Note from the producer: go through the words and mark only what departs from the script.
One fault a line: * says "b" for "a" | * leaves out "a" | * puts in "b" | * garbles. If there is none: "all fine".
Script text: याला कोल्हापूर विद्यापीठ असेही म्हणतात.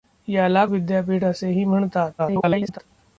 * leaves out "कोल्हापूर"
* garbles